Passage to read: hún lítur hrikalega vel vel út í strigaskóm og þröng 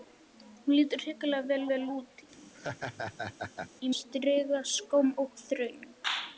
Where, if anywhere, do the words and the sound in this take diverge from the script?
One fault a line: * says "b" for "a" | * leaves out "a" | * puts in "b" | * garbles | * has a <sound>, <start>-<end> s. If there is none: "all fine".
* has a laugh, 2.3-3.7 s